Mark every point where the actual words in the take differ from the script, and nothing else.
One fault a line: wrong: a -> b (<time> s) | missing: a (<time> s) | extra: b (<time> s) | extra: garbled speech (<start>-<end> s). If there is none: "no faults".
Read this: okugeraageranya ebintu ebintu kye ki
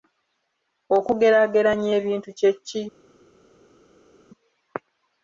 missing: ebintu (2.3 s)